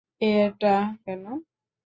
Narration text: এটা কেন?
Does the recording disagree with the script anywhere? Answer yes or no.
no